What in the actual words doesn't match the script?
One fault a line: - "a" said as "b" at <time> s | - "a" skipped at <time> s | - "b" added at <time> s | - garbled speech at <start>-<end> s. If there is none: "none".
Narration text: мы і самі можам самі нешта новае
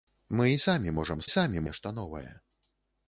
none